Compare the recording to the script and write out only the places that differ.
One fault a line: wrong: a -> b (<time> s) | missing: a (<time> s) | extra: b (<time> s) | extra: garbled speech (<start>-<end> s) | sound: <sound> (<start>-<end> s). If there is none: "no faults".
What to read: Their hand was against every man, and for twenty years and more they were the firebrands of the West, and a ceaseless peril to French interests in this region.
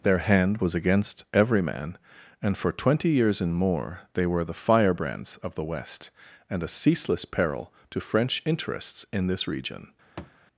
sound: thud (10.2-10.4 s)